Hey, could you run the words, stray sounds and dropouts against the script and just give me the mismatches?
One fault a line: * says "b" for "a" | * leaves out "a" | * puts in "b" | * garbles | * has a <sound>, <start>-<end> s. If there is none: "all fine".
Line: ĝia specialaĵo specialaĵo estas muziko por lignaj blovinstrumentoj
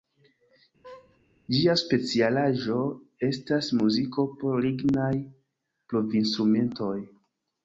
* has a laugh, 0.8-1.2 s
* leaves out "specialaĵo"